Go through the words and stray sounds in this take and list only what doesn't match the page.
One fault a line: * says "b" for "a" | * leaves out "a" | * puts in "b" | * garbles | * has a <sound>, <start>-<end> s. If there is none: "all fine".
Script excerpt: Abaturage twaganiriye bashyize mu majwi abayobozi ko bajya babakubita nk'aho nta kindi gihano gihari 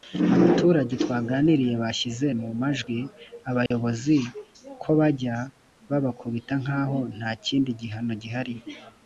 * has a dropout, 3.7-3.7 s